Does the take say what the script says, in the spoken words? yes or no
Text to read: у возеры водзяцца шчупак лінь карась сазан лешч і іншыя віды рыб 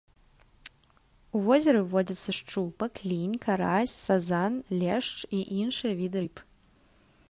yes